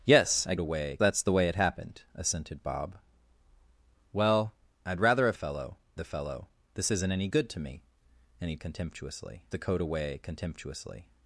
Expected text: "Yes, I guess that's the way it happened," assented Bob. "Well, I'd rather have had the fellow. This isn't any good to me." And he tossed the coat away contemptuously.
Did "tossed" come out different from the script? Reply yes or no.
yes